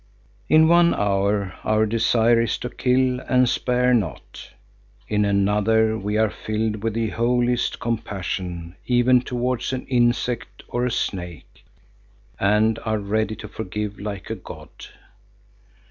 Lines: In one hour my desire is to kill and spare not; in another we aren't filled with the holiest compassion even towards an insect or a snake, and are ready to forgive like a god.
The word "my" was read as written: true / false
false